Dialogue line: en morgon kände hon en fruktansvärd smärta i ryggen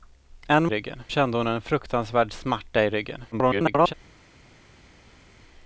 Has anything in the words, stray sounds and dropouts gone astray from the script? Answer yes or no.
yes